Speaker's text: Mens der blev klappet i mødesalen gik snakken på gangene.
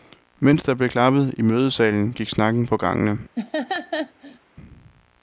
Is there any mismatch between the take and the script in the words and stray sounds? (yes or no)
yes